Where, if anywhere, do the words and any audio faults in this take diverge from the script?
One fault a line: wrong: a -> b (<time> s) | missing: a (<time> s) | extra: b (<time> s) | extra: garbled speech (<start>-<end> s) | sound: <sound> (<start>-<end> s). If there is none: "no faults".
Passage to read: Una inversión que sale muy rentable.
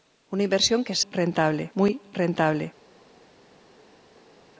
wrong: sale -> rentable (1.1 s)